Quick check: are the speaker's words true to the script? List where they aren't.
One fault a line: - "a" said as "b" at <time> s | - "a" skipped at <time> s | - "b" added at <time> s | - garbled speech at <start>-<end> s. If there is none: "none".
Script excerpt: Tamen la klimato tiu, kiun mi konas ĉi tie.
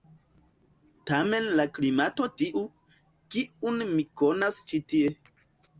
none